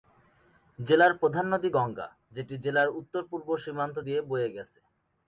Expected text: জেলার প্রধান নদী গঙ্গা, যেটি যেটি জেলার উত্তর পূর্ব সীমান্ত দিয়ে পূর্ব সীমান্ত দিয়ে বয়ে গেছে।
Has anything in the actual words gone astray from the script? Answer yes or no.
yes